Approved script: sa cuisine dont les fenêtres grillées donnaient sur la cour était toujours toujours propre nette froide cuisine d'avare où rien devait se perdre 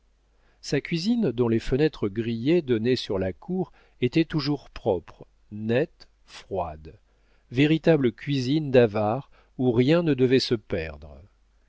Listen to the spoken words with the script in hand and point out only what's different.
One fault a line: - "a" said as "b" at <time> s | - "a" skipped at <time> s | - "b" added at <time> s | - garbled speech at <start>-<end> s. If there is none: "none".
- "toujours" skipped at 4.7 s
- "véritable" added at 7.5 s
- "ne" added at 10.0 s